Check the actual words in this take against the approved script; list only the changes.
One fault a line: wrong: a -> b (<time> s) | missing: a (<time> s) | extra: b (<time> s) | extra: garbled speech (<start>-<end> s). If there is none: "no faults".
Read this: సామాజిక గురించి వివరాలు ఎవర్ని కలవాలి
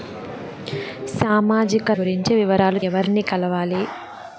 no faults